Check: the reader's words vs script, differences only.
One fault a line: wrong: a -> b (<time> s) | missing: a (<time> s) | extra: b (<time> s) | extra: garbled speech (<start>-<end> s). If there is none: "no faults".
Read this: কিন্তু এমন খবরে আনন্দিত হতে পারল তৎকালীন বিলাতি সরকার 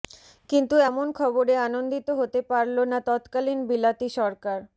extra: না (2.9 s)